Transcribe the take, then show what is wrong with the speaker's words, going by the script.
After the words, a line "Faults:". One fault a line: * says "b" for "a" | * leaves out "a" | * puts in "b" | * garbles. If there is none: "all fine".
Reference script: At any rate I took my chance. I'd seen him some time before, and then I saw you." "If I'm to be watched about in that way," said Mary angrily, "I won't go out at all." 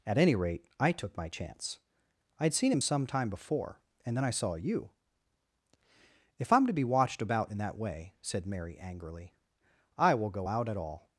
At any rate I took my chance. I'd seen him some time before, and then I saw you." "If I'm to be watched about in that way," said Mary angrily, "I will go out at all."
Faults:
* says "will" for "won't"